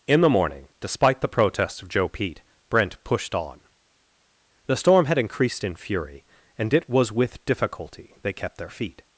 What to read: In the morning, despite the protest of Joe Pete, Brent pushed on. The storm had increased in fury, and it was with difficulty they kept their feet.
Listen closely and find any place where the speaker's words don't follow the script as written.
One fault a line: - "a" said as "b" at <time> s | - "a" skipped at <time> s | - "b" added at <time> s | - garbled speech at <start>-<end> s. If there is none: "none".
- "protest" said as "protests" at 1.3 s